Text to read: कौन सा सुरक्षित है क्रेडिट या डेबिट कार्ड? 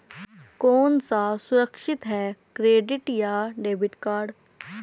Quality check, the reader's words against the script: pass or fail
pass